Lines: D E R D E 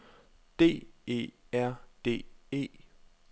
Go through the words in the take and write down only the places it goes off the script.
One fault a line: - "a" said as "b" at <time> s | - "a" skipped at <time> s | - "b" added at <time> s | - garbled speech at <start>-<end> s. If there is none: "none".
none